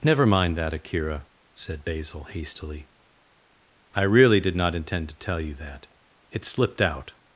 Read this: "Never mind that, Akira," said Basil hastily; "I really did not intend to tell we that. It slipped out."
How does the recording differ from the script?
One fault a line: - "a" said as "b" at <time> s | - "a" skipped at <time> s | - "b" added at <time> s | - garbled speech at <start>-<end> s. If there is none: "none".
- "we" said as "you" at 5.4 s